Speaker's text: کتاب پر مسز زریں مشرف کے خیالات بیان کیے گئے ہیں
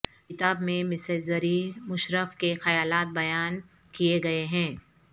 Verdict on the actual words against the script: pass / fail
fail